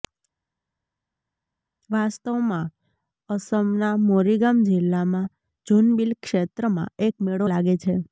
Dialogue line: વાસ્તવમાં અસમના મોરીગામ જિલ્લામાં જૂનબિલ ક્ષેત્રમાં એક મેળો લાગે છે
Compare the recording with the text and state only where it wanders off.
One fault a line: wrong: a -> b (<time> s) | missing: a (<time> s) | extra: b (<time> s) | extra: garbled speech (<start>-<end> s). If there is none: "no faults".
no faults